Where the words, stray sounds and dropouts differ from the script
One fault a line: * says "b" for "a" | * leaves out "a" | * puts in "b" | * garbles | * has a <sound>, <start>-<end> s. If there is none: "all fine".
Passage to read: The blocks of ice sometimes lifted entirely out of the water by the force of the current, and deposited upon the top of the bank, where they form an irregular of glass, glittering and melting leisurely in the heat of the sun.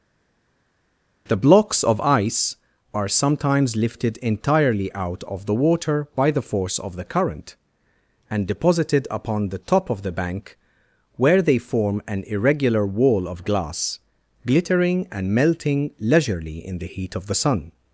* puts in "are"
* puts in "wall"